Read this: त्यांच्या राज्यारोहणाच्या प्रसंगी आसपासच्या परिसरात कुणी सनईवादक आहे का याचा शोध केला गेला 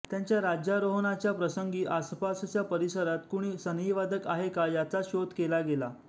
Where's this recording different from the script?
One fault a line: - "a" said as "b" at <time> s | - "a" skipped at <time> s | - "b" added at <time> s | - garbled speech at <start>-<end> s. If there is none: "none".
none